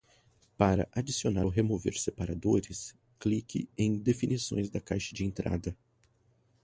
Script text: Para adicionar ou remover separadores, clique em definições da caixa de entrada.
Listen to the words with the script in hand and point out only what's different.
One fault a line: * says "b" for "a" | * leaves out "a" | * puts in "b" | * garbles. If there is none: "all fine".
all fine